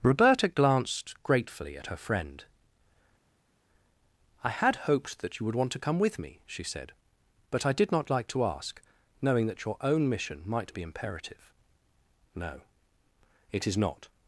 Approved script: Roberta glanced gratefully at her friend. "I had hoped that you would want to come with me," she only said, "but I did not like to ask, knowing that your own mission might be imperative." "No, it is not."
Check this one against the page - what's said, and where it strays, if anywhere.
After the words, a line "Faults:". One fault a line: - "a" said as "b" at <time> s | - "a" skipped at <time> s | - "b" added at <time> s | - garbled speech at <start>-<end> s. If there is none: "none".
Roberta glanced gratefully at her friend. "I had hoped that you would want to come with me," she said, "but I did not like to ask, knowing that your own mission might be imperative." "No, it is not."
Faults:
- "only" skipped at 6.6 s